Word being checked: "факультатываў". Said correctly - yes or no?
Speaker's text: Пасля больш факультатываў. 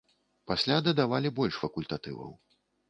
yes